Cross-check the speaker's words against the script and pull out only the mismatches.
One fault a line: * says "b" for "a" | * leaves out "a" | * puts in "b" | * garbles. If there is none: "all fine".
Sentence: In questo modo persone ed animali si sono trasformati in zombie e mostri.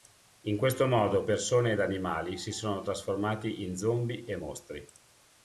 all fine